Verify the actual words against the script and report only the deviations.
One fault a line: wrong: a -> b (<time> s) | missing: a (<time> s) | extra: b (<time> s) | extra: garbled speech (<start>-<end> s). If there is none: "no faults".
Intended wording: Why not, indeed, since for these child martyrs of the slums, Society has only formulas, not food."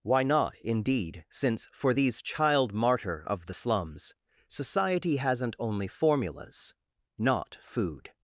wrong: martyrs -> martyr (2.7 s)
wrong: has -> hasn't (5.2 s)